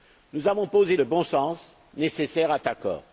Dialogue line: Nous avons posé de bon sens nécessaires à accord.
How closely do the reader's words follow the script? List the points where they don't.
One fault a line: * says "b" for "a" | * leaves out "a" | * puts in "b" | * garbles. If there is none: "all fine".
all fine